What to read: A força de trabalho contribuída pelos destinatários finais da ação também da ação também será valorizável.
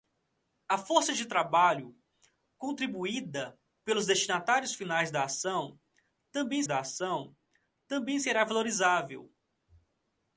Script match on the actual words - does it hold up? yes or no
yes